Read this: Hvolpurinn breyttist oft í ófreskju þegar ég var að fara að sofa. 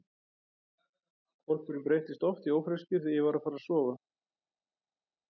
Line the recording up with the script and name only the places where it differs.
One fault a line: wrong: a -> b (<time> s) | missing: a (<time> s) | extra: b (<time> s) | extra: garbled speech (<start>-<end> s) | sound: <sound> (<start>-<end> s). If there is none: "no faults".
no faults